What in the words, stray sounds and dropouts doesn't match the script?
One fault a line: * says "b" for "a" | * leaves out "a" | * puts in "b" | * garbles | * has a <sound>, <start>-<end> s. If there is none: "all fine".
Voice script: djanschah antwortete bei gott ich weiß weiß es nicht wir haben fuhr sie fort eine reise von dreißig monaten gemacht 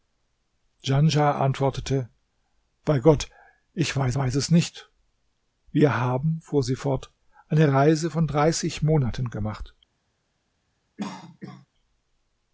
* has a cough, 11.0-11.7 s